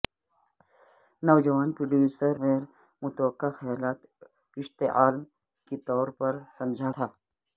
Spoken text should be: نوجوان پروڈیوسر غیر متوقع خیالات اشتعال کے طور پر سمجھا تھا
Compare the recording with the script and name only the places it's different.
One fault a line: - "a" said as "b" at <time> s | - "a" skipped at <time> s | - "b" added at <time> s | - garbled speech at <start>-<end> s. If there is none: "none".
none